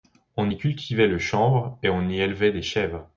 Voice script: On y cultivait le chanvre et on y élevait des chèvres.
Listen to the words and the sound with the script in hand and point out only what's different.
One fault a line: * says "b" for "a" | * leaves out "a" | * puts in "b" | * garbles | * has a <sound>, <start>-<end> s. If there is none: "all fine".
all fine